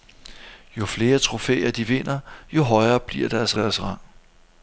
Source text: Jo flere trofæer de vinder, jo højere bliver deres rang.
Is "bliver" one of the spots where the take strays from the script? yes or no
no